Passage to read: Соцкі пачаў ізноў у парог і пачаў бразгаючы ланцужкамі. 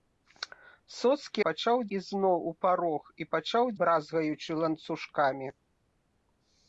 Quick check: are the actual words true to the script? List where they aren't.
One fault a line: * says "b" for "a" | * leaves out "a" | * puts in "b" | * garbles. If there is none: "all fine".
all fine